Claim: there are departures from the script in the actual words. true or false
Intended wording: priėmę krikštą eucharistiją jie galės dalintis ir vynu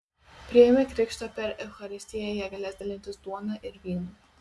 true